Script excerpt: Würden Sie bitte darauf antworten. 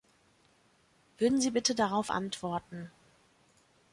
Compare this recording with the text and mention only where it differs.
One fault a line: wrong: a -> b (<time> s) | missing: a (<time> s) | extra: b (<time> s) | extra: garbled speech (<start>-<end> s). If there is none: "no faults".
no faults